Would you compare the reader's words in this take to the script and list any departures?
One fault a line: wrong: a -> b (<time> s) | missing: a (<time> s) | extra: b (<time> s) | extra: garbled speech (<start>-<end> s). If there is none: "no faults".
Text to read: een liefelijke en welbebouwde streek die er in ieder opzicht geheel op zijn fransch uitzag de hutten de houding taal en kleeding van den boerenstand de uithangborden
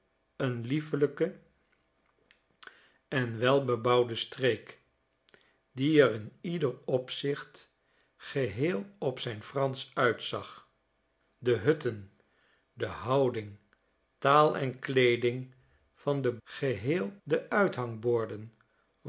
wrong: boerenstand -> geheel (16.4 s)